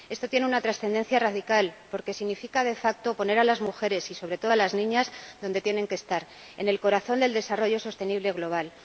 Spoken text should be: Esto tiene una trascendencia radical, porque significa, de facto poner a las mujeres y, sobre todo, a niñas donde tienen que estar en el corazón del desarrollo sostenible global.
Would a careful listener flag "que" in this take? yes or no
no